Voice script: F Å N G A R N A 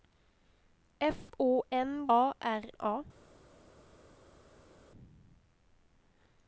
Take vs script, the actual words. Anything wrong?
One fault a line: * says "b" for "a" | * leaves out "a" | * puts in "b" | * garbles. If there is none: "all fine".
* leaves out "G"
* leaves out "N"